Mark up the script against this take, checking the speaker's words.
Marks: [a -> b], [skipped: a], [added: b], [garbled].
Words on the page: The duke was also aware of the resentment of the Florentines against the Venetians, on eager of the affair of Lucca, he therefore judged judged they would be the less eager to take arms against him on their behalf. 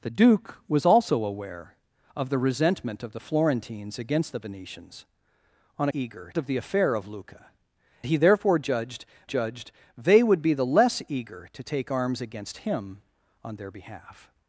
The duke was also aware of the resentment of the Florentines against the Venetians, on eager of the affair of Lucca, he therefore judged judged they would be the less eager to take arms against him on their behalf.